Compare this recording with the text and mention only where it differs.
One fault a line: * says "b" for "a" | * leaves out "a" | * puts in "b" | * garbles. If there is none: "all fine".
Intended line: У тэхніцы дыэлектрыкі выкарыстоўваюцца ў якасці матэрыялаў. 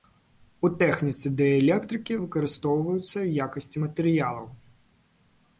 all fine